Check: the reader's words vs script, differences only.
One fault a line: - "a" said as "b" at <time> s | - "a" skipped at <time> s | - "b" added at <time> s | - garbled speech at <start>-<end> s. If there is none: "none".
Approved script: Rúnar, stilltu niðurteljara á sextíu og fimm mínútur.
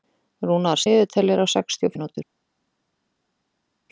- "stilltu" skipped at 0.8 s
- "fimm" skipped at 2.0 s